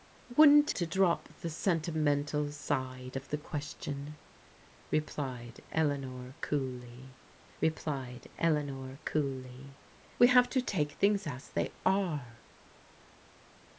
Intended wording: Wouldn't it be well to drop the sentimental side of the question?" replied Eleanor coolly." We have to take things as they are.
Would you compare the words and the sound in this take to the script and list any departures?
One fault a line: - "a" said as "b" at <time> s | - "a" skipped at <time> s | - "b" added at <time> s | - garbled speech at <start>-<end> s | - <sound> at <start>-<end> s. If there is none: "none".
- "it be well" skipped at 0.7 s
- "replied Eleanor coolly" added at 7.6 s